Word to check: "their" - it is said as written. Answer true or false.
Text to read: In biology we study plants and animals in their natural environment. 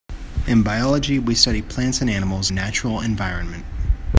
false